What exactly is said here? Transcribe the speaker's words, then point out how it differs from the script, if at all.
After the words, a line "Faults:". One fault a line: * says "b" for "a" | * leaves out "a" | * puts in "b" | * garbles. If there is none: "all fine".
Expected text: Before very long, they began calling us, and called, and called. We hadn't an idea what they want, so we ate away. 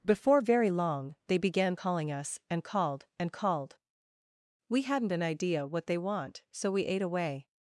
Before very long, they began calling us, and called, and called. We hadn't an idea what they want, so we ate away.
Faults:
all fine